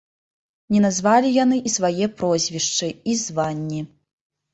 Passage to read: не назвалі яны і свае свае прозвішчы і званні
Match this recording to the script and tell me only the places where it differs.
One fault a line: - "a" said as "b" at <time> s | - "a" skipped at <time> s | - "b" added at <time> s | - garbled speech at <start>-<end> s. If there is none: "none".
- "свае" skipped at 2.1 s